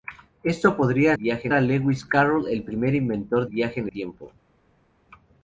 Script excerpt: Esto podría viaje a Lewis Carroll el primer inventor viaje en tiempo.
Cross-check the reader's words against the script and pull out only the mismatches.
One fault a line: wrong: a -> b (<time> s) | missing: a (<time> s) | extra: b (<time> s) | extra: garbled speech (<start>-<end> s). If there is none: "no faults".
no faults